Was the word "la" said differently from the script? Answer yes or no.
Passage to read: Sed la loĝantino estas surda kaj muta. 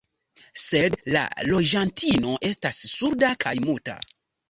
no